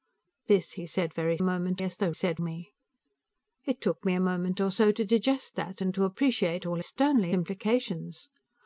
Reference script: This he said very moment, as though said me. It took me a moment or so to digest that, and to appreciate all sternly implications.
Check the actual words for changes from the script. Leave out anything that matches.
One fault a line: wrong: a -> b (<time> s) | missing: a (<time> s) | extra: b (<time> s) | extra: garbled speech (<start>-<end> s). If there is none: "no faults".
no faults